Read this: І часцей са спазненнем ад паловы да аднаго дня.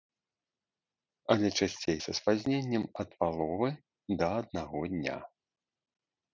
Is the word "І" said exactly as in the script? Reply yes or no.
no